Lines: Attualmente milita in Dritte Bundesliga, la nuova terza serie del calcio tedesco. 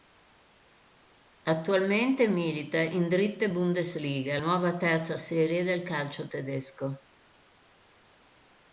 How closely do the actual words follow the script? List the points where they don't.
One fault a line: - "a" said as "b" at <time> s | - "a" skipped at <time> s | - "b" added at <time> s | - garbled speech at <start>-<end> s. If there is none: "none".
- "la" skipped at 4.4 s